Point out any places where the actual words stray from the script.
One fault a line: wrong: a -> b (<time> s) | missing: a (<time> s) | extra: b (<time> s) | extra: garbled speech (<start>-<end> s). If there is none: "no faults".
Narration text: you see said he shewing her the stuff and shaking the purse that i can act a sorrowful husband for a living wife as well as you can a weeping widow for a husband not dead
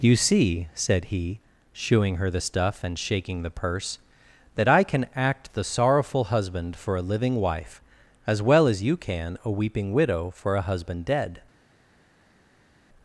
wrong: a -> the (5.5 s)
missing: not (11.0 s)